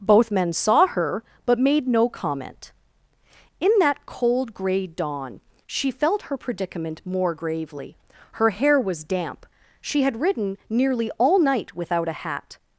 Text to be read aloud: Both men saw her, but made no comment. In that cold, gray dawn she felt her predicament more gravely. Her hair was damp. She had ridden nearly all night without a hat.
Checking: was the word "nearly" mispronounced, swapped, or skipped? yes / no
no